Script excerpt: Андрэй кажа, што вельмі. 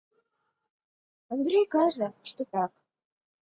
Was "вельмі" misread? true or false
true